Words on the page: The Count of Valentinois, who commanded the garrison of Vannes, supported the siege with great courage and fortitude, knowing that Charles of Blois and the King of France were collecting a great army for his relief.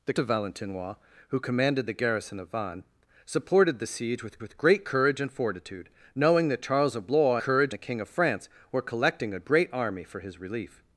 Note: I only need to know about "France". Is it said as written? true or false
true